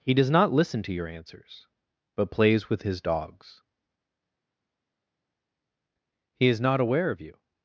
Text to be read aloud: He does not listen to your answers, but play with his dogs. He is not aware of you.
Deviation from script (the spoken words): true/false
true